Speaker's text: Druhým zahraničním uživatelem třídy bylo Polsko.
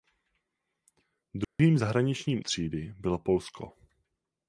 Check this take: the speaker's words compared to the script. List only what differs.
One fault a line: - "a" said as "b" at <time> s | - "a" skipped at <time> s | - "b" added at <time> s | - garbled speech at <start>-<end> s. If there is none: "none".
- "uživatelem" skipped at 2.4 s